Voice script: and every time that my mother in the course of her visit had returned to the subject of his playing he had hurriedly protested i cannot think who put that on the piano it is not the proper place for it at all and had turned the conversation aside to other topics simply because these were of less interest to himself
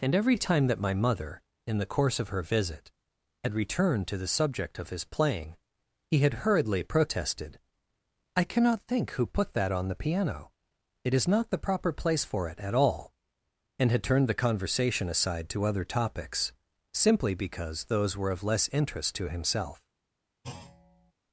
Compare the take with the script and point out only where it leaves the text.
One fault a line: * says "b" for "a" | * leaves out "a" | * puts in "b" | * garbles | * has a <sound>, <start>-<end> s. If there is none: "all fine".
* says "those" for "these"
* has a thud, 20.4-21.1 s